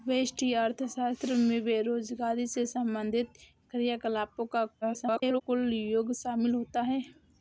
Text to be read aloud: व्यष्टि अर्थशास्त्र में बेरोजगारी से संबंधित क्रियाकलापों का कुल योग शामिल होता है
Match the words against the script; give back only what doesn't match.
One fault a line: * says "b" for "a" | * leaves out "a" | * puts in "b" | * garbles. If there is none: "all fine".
* garbles